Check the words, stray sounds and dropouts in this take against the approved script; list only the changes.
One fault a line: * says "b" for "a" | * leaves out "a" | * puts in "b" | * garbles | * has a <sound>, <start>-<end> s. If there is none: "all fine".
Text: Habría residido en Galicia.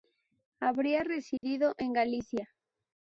* has a dropout, 1.4-1.4 s